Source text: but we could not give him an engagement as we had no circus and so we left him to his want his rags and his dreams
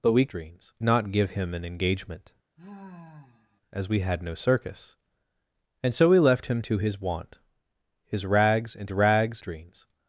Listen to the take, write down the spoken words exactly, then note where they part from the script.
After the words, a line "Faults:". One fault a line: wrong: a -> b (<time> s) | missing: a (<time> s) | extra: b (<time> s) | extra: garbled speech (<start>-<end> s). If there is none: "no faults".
but we dreams not give him an engagement as we had no circus and so we left him to his want his rags and rags dreams
Faults:
wrong: could -> dreams (0.3 s)
wrong: his -> rags (8.9 s)